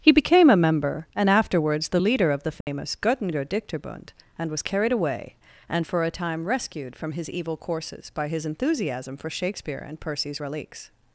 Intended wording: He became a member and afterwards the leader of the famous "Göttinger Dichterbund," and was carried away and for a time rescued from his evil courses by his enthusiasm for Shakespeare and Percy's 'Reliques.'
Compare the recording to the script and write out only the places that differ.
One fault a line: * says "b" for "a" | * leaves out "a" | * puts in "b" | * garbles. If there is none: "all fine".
all fine